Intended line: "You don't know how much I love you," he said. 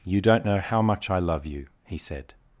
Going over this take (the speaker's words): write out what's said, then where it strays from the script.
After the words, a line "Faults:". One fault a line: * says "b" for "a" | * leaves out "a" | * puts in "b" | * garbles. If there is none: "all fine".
"You don't know how much I love you," he said.
Faults:
all fine